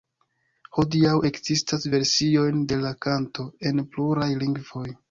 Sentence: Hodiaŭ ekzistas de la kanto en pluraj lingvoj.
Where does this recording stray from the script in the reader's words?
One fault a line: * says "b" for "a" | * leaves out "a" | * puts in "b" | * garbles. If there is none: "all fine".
* puts in "versiojn"